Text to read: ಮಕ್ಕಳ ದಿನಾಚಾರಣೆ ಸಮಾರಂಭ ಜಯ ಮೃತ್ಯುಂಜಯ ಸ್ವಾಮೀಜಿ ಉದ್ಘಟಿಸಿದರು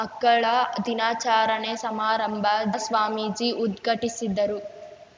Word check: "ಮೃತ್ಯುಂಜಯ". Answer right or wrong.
wrong